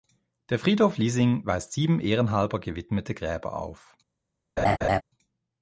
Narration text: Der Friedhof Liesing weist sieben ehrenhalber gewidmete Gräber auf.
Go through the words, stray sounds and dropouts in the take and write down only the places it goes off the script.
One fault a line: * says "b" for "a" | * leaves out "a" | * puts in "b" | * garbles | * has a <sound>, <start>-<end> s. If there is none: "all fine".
* has a laugh, 4.6-5.0 s